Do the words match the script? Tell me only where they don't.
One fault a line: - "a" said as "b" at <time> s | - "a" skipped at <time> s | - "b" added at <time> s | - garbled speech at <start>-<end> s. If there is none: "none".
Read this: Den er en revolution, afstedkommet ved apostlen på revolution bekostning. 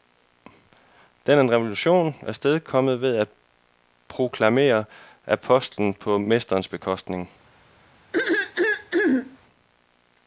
- "at proklamere" added at 3.1 s
- "revolution" said as "mesterens" at 6.2 s